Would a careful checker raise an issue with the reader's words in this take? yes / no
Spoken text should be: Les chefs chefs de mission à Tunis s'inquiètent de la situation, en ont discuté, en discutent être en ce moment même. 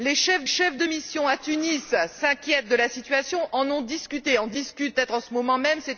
no